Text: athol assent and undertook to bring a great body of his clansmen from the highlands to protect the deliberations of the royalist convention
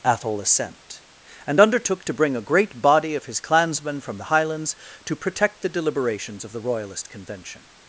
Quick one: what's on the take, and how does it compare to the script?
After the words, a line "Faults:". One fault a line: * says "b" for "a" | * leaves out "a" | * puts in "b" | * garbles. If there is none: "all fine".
athol assent and undertook to bring a great body of his clansmen from the highlands to protect the deliberations of the royalist convention
Faults:
all fine